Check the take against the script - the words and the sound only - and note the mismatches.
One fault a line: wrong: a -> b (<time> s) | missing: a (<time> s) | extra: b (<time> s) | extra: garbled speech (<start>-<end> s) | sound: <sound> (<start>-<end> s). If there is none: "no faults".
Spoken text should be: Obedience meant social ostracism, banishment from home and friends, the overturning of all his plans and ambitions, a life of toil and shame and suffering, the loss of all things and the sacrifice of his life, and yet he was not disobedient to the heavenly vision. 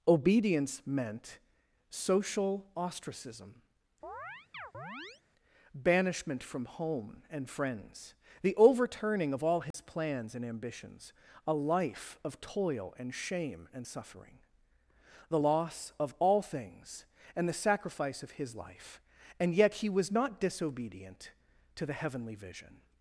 sound: chirp (4.0-5.2 s)
sound: dropout (9.7-9.7 s)